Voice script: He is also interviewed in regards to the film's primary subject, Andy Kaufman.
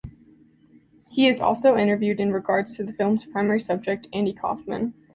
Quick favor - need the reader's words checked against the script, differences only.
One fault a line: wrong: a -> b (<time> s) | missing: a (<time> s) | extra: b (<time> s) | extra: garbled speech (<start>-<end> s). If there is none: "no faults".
no faults